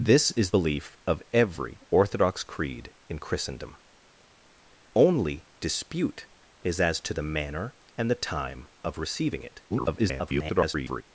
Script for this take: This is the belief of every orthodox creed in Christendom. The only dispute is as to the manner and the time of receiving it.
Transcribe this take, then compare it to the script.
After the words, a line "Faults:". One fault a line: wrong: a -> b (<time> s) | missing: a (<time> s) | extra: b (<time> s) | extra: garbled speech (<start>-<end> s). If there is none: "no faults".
This is belief of every orthodox creed in Christendom. Only dispute is as to the manner and the time of receiving it. [garbled]
Faults:
missing: the (0.5 s)
missing: The (3.7 s)
extra: garbled speech (9.7-11.0 s)